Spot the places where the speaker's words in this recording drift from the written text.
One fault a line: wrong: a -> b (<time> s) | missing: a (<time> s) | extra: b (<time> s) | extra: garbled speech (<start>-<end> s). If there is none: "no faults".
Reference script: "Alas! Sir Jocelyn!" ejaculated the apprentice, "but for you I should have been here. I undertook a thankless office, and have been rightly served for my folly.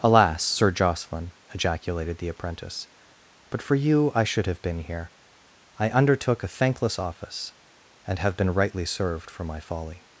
no faults